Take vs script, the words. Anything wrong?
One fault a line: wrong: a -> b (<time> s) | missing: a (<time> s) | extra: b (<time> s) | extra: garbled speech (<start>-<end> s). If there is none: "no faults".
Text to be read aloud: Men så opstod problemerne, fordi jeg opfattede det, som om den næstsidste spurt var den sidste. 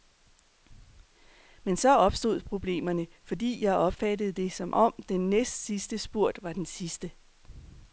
no faults